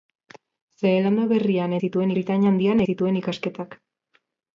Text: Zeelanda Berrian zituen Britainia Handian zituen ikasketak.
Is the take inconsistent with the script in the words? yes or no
no